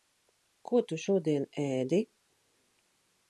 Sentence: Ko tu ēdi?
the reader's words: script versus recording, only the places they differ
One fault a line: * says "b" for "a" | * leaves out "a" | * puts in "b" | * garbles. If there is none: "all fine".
* puts in "šodien"